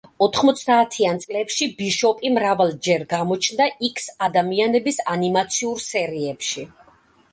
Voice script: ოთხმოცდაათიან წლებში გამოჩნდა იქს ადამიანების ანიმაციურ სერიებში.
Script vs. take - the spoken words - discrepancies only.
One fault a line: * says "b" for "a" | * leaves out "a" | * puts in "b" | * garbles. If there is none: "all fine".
* puts in "ბიშოპი მრავალჯერ"